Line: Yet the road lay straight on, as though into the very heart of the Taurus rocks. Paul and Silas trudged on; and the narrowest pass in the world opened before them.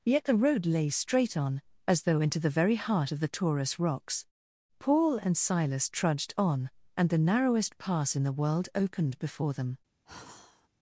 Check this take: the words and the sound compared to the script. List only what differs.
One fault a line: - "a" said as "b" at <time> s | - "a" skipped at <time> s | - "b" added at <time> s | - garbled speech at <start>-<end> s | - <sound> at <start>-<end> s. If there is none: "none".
- sigh at 10.1-10.7 s